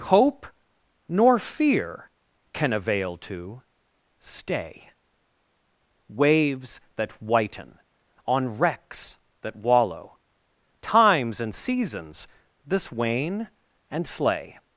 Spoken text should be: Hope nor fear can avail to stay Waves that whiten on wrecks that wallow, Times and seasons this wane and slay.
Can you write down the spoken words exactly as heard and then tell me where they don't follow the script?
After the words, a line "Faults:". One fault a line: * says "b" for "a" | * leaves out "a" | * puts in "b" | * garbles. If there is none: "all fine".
Hope nor fear can avail to stay Waves that whiten on wrecks that wallow, Times and seasons this wane and slay.
Faults:
all fine